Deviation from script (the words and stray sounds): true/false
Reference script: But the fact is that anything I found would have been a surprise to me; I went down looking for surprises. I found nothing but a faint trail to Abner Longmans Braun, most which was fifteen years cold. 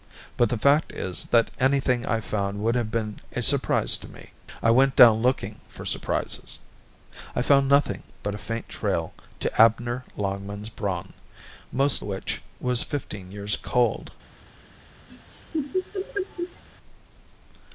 true